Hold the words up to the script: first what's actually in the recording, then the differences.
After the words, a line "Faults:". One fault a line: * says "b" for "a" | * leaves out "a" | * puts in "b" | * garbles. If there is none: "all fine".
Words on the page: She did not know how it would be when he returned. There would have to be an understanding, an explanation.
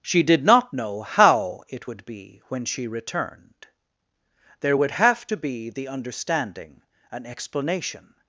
She did not know how it would be when she returned. There would have to be the understanding, an explanation.
Faults:
* says "she" for "he"
* says "the" for "an"